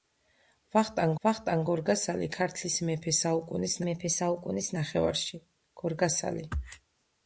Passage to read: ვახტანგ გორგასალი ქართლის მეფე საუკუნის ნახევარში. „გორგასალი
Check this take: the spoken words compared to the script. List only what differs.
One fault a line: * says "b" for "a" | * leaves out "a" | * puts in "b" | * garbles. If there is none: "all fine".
* puts in "ვახტანგ"
* puts in "მეფე საუკუნის"